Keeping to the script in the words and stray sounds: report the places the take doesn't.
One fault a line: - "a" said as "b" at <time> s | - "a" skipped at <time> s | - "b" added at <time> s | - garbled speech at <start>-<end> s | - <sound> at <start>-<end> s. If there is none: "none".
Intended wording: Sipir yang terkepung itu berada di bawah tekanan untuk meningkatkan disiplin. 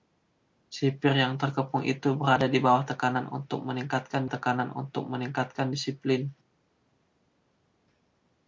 - "tekanan untuk meningkatkan" added at 4.2 s